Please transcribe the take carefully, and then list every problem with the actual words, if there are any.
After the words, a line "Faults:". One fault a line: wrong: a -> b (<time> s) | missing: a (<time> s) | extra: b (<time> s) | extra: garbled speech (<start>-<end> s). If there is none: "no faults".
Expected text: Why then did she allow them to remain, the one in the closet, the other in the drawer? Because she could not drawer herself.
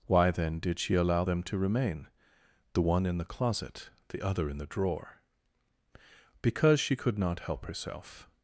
Why then did she allow them to remain, the one in the closet, the other in the drawer? Because she could not help herself.
Faults:
wrong: drawer -> help (7.4 s)